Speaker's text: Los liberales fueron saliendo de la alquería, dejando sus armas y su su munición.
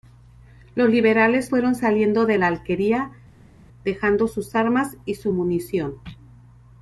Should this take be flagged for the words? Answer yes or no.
yes